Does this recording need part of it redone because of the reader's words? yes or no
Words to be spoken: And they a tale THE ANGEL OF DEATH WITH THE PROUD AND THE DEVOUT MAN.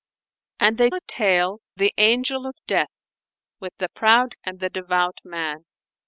no